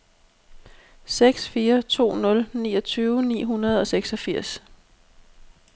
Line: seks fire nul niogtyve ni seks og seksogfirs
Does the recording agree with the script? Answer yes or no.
no